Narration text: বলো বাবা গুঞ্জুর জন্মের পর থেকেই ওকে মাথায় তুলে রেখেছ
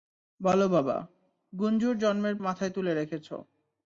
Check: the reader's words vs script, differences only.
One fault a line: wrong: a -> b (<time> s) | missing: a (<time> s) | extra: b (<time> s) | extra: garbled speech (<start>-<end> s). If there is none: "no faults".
missing: পর থেকেই ওকে (2.4 s)